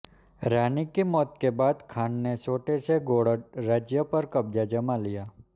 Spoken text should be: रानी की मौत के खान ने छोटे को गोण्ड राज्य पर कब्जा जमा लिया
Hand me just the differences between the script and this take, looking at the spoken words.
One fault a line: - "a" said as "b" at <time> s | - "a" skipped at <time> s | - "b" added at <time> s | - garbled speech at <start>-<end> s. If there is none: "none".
- "बाद" added at 1.6 s
- "को" said as "से" at 2.9 s